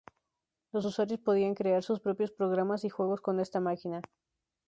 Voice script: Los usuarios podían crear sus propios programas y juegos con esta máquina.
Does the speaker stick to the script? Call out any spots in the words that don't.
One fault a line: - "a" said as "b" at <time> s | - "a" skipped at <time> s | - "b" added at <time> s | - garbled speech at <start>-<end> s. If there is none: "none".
none